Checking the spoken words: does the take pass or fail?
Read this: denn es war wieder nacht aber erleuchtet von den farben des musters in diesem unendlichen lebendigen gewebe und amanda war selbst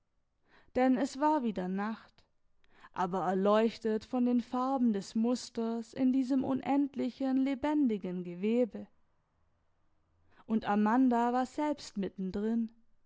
pass